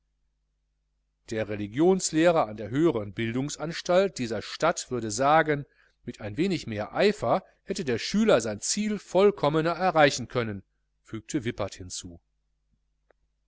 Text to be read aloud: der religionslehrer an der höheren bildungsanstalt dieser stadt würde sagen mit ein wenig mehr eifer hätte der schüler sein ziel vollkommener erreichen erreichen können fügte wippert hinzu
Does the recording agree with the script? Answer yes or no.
no